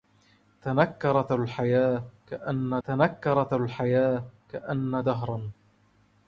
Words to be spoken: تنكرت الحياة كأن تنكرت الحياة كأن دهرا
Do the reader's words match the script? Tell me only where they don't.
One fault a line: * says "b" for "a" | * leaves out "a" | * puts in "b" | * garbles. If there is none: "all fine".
all fine